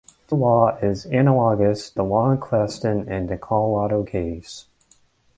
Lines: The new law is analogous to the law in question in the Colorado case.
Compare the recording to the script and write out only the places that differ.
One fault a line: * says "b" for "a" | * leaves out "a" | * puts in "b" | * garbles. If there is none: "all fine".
* leaves out "new"
* leaves out "to"